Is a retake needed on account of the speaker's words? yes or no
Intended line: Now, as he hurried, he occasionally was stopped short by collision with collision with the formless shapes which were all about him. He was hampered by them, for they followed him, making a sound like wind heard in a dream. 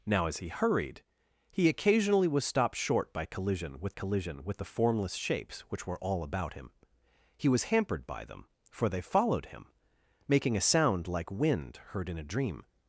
no